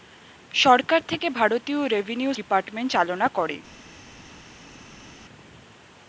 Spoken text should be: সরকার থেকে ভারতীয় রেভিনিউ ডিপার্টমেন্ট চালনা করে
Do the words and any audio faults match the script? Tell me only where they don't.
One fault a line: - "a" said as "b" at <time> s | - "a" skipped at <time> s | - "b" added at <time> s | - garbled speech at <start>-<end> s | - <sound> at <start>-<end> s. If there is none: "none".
none